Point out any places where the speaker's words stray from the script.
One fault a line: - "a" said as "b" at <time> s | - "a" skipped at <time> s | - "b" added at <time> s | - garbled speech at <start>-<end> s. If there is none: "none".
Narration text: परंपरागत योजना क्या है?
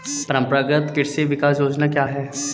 - "कृषि विकास" added at 1.0 s